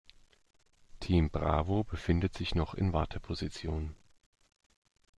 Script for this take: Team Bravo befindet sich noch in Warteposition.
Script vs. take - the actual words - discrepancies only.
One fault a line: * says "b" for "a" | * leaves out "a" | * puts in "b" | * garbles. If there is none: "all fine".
all fine